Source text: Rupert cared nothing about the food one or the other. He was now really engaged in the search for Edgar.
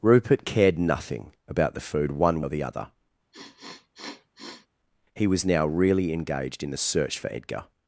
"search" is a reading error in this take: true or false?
false